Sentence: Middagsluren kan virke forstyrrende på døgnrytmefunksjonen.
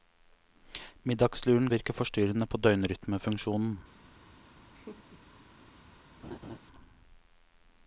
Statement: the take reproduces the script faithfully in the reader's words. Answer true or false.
false